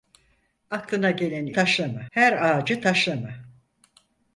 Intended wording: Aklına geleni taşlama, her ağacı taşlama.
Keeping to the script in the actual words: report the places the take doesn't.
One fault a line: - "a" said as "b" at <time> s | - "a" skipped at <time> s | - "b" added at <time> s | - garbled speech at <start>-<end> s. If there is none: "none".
none